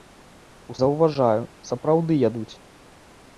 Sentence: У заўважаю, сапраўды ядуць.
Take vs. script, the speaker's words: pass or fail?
pass